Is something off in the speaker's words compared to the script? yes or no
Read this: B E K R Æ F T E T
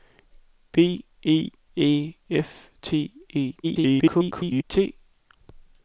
yes